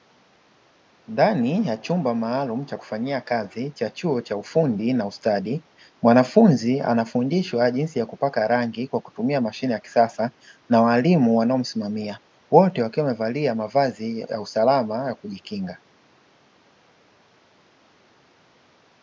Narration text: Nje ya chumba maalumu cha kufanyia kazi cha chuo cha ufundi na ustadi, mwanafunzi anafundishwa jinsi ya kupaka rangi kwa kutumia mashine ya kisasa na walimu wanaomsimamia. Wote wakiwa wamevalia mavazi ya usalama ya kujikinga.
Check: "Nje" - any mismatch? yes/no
yes